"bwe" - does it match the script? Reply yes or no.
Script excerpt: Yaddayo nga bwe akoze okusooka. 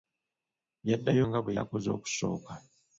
yes